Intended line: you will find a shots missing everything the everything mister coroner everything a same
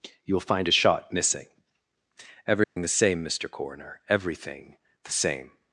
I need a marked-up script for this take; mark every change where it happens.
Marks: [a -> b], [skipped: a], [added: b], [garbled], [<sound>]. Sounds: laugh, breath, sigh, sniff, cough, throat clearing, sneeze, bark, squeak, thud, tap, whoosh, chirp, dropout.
you will find a [shots -> shot] missing everything [dropout] the [everything -> same] mister coroner everything [a -> the] same